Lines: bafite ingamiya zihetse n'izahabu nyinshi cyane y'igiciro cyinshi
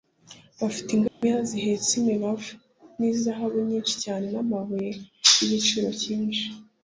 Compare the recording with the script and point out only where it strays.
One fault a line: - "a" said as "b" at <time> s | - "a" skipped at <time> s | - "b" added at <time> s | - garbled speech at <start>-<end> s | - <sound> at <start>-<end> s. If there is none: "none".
- dropout at 1.1-1.2 s
- "imibavu" added at 2.0 s
- "n'amabuye" added at 4.3 s